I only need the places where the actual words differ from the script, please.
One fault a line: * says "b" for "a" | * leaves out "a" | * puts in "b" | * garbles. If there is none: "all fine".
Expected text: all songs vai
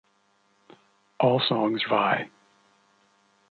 all fine